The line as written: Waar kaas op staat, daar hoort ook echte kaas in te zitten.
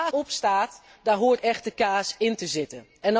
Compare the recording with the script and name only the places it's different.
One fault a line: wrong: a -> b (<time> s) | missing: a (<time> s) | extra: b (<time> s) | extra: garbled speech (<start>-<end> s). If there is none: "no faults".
missing: kaas (0.1 s)
missing: ook (1.4 s)